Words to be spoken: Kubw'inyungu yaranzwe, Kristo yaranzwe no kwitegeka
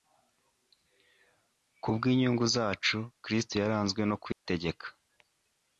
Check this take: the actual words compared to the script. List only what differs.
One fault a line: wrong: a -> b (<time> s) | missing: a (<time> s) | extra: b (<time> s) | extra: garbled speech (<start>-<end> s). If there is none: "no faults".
wrong: yaranzwe -> zacu (2.5 s)